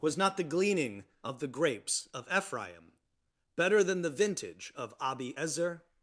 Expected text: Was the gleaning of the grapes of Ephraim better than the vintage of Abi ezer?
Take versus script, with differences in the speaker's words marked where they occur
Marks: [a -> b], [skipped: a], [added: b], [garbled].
Was [added: not] the gleaning of the grapes of Ephraim better than the vintage of Abi ezer?